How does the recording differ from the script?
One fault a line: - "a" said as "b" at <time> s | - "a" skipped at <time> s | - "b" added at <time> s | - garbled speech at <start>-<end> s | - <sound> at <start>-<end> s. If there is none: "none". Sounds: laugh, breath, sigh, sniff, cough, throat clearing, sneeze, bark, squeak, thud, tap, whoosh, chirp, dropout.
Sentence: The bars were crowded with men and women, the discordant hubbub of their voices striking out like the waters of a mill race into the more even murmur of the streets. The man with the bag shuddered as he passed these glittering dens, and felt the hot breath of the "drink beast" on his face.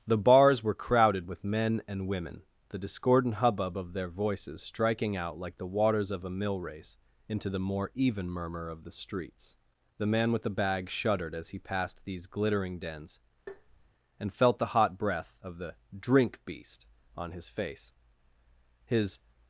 - tap at 13.5-13.9 s
- "His" added at 18.9 s